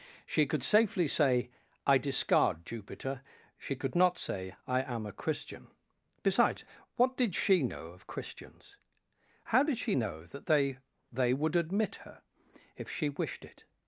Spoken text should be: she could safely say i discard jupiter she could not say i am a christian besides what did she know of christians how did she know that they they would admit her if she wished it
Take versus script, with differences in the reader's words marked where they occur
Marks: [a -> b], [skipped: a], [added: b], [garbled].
she could safely say i discard jupiter she could not say i am a christian besides what did she know of christians how did she know that they they would admit her if she wished it